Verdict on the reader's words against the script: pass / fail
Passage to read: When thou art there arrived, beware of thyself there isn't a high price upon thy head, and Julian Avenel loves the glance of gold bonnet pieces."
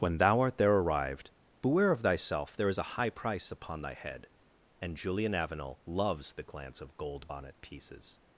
fail